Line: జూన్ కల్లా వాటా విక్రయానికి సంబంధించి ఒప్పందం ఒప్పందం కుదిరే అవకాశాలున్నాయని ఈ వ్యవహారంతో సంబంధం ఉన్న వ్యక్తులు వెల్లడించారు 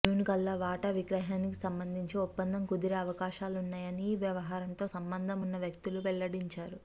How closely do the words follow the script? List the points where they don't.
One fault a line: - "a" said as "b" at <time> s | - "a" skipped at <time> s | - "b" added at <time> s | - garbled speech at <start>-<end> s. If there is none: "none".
- "ఒప్పందం" skipped at 2.6 s